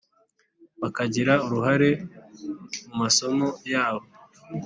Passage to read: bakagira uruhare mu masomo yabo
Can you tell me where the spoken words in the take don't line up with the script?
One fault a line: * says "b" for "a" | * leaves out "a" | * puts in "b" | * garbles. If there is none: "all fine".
all fine